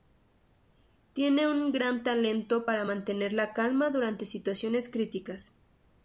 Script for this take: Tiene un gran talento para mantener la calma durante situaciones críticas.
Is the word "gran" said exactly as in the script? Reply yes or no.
yes